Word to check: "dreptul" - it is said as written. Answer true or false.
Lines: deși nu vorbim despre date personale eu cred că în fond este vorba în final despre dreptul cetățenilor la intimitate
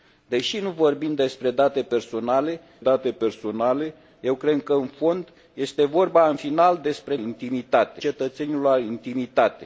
false